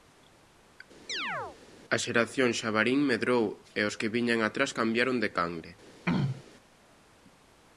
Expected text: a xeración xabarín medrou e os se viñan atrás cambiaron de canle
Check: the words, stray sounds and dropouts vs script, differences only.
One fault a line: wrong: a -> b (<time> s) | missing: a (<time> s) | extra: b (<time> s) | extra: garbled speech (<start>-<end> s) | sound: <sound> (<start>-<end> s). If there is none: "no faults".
sound: chirp (1.1-1.6 s)
wrong: se -> que (4.0 s)
sound: throat clearing (6.1-6.4 s)